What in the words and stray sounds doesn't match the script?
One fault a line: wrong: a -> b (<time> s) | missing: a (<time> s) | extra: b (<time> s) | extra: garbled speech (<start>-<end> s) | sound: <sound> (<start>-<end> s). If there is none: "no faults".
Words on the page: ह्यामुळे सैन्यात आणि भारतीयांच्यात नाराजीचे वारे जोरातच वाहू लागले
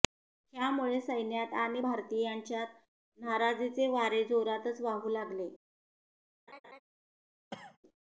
sound: laugh (6.5-6.8 s)
sound: cough (7.5-7.8 s)